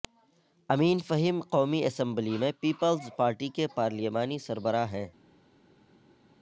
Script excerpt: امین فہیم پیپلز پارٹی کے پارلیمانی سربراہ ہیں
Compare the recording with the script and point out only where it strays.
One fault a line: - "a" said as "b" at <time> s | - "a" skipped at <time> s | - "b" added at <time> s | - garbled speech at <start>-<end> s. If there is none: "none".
- "قومی اسمبلی میں" added at 1.5 s